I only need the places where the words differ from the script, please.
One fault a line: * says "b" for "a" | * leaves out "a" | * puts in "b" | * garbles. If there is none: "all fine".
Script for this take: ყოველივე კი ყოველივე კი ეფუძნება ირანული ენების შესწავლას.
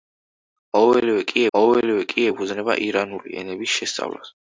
all fine